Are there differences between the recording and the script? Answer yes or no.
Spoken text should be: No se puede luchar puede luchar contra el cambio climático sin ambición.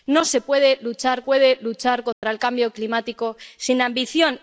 no